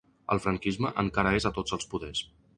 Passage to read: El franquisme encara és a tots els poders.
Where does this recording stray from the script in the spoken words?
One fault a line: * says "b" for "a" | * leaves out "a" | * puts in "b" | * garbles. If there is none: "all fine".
all fine